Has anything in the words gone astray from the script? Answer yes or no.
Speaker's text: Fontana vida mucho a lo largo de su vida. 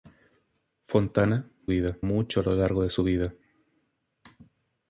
no